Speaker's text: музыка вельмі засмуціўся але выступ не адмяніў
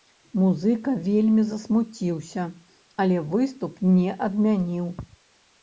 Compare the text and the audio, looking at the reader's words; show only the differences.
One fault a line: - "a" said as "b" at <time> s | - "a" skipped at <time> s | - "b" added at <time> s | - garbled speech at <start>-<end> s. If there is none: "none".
none